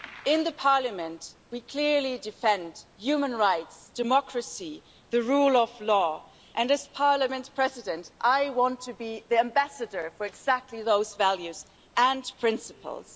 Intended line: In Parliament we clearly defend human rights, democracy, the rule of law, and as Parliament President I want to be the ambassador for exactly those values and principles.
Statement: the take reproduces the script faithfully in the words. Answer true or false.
true